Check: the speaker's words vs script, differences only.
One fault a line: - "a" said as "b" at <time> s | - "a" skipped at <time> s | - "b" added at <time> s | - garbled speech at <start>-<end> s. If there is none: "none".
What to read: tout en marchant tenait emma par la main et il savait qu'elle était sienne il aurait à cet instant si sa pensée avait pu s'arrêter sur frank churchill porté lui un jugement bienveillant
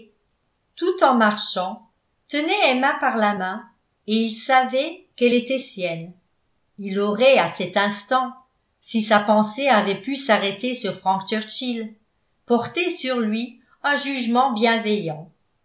- "sur" added at 12.9 s